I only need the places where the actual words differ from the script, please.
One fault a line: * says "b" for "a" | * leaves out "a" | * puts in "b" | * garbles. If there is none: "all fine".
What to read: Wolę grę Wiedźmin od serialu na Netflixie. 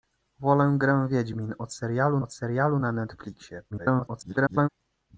* puts in "od serialu"
* garbles